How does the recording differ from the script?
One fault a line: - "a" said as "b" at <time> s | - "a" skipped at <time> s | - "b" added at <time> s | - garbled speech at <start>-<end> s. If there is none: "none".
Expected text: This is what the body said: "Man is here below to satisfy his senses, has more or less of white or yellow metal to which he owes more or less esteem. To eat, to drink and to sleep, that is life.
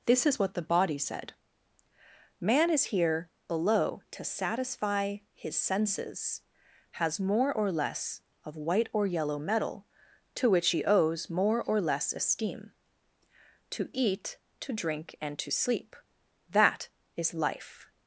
none